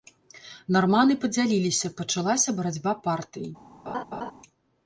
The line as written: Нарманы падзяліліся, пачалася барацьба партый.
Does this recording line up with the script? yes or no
yes